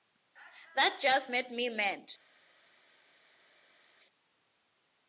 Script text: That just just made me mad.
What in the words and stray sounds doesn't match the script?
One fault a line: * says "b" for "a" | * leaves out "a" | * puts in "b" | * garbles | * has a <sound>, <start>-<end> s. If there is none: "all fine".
* leaves out "just"